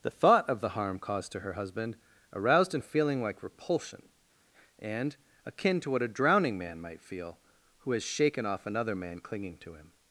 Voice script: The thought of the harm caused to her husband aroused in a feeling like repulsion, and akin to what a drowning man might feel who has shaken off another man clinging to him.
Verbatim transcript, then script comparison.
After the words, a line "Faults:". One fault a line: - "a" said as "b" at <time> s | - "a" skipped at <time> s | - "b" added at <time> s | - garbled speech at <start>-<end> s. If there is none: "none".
The thought of the harm caused to her husband aroused in a feeling like repulsion, and akin to what a drowning man might feel who has shaken off another man clinging to him.
Faults:
none